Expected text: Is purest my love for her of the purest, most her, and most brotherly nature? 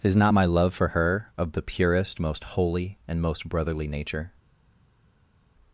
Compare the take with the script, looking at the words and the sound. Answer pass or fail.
fail